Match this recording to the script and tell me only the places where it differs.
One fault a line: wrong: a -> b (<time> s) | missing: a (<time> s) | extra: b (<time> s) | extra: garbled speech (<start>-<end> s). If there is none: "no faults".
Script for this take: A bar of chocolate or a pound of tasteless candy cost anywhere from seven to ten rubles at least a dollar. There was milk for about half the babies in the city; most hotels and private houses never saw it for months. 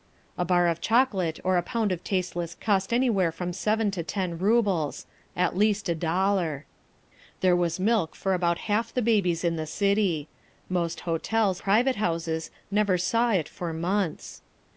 missing: candy (2.5 s)
missing: and (11.6 s)